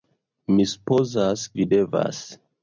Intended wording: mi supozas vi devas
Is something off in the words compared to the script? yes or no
no